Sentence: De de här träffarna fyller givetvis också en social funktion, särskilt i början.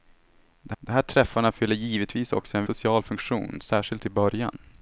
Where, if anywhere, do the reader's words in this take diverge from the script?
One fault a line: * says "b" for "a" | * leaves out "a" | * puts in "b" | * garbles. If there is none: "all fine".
all fine